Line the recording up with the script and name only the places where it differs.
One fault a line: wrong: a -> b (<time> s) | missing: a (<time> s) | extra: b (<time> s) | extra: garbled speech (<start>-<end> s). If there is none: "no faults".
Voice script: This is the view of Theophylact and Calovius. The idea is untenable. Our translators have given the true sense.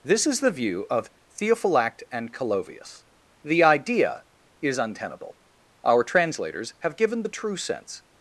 no faults